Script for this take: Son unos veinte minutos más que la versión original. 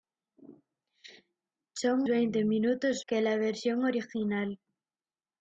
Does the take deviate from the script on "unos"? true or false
true